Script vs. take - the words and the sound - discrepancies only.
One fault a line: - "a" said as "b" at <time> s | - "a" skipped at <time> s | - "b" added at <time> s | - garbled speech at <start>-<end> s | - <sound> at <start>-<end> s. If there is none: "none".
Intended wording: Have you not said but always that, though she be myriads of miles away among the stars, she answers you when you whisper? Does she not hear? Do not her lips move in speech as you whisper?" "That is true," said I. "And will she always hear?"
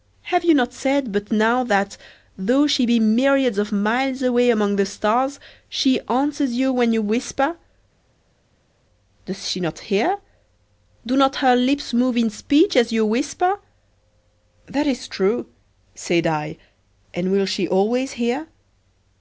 - "always" said as "now" at 1.3 s